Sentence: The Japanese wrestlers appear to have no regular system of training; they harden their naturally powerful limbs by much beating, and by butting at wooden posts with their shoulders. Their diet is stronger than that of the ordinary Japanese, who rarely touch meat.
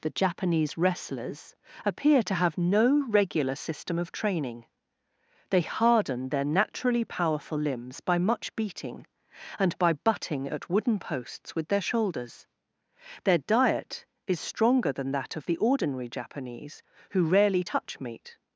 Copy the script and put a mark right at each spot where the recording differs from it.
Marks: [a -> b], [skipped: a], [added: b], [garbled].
The Japanese wrestlers appear to have no regular system of training; they harden their naturally powerful limbs by much beating, and by butting at wooden posts with their shoulders. Their diet is stronger than that of the ordinary Japanese, who rarely touch meat.